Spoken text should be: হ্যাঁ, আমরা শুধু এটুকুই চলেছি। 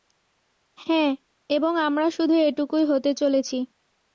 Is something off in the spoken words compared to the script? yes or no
yes